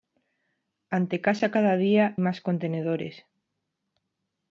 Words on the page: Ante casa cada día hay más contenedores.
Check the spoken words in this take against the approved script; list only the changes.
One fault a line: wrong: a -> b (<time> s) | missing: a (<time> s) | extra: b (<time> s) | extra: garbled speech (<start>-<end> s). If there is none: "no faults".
missing: hay (2.2 s)